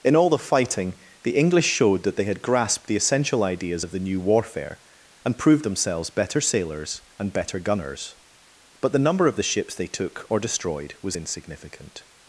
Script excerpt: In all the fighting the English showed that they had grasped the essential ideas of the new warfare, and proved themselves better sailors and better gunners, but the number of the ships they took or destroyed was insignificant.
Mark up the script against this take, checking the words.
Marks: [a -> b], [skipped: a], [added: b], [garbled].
In all the fighting the English showed that they had grasped the essential ideas of the new warfare, and proved themselves better sailors and better gunners, but the number of the ships they took or destroyed was insignificant.